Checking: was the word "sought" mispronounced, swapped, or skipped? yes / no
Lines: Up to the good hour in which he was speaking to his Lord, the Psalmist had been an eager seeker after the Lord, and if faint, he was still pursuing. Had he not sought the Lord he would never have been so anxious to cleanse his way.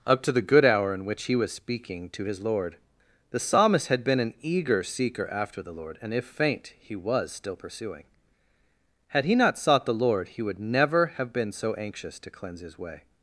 no